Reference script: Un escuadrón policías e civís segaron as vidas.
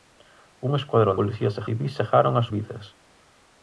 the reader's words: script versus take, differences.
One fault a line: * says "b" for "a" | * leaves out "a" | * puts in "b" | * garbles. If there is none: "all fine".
all fine